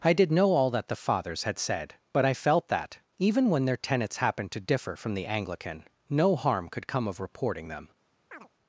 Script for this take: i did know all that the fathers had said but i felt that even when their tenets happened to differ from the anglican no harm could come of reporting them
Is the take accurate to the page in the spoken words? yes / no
yes